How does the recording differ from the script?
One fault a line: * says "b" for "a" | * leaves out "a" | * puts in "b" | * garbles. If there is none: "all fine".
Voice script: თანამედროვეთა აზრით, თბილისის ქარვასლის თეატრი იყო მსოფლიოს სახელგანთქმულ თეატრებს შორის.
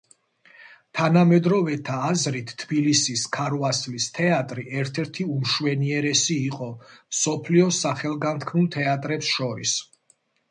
* puts in "ერთ ერთი უმშვენიერესი"